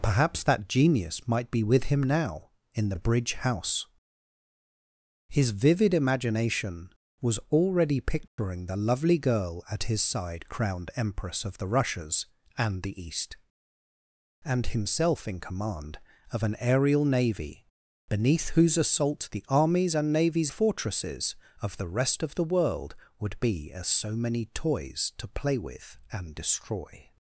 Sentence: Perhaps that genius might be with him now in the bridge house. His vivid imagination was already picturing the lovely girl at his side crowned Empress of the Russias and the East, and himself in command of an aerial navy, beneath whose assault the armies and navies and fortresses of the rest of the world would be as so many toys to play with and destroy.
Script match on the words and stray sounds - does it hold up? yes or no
no